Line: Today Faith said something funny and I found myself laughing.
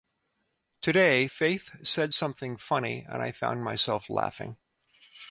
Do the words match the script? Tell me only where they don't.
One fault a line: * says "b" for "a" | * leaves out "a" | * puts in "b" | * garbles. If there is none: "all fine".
all fine